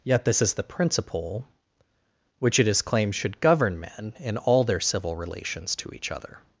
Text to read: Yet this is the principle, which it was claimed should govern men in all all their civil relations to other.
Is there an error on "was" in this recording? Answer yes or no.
yes